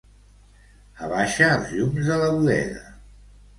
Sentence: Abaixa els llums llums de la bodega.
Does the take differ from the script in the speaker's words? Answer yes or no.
yes